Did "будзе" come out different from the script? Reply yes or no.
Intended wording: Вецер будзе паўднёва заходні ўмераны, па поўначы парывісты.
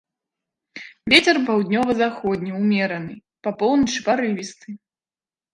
yes